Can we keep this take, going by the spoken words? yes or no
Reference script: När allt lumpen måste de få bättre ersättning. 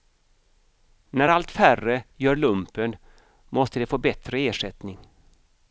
no